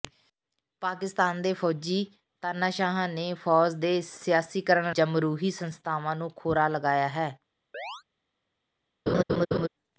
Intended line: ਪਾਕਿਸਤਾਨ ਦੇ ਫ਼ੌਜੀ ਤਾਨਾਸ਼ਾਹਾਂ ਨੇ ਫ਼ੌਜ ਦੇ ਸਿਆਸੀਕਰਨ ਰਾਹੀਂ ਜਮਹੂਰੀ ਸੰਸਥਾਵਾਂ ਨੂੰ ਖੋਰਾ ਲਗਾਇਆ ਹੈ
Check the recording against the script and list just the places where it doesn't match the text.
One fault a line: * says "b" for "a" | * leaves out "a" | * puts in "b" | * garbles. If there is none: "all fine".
* leaves out "ਰਾਹੀਂ"